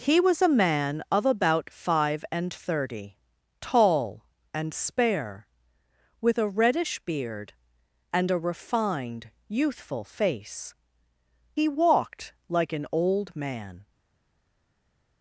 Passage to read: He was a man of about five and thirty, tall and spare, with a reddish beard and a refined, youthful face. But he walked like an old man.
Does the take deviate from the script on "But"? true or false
true